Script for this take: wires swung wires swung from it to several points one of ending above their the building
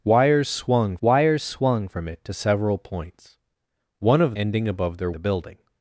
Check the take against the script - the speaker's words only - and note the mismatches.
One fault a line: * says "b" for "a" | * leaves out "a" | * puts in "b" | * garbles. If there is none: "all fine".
all fine